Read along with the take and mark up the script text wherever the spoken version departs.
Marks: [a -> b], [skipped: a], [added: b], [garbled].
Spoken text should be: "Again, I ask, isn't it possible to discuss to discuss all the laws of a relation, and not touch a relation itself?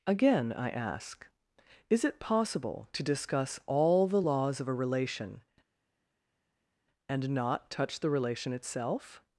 "Again, I ask, [isn't -> is] it possible to discuss [skipped: to discuss] all the laws of a relation, and not touch [a -> the] relation itself?